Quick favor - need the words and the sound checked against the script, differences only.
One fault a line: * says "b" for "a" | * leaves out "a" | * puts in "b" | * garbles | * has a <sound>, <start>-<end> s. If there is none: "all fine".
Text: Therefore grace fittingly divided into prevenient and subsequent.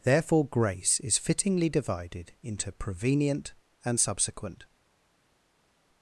* puts in "is"